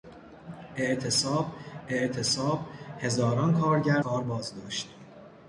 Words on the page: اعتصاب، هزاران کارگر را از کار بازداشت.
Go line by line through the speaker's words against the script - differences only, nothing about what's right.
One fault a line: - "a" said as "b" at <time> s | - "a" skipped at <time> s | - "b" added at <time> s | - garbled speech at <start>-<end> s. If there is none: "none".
- "اعتصاب" added at 1.9 s
- "را از" skipped at 4.0 s